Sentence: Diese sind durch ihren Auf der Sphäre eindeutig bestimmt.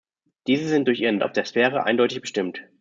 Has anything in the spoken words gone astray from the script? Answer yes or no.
no